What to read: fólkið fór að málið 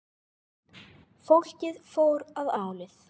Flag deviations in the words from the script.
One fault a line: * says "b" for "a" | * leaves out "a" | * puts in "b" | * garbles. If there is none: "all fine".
all fine